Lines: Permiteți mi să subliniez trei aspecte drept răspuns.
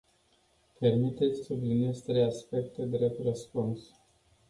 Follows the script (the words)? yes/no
no